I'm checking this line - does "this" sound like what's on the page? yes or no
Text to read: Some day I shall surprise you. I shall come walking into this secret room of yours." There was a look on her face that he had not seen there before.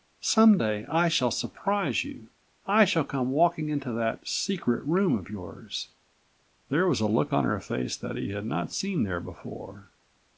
no